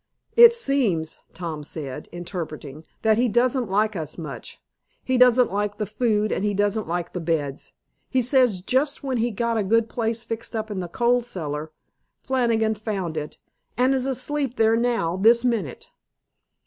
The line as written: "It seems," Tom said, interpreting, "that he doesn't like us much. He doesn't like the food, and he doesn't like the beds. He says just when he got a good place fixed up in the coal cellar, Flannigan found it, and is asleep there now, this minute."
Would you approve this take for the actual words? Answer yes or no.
yes